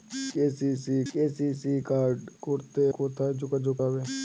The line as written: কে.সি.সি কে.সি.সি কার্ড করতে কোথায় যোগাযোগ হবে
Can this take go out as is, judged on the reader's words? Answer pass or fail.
pass